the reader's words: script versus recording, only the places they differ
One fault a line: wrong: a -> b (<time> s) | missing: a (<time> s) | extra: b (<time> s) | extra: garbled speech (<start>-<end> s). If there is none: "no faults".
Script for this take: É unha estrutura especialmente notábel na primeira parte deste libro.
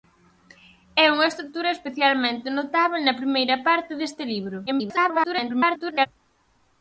extra: garbled speech (4.7-6.1 s)